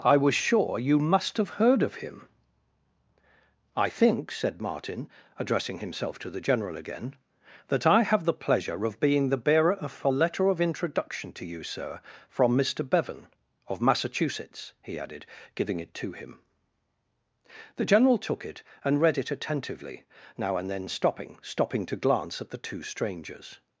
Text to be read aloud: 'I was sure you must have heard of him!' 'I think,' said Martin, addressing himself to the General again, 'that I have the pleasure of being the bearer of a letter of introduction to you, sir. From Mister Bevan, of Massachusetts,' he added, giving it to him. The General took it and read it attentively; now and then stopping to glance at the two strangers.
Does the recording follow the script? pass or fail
fail